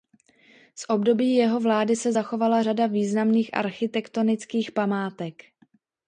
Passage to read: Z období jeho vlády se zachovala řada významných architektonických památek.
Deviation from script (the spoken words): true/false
false